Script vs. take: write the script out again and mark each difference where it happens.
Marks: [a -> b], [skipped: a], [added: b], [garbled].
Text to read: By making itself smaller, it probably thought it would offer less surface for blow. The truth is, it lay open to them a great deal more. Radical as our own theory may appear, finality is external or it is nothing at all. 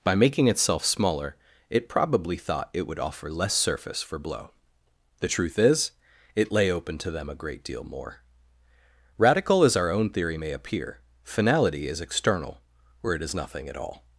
By making itself smaller, it probably thought it would offer less surface for blow. The truth is, it lay open to them a great deal more. Radical as our own theory may appear, finality is external or it is nothing at all.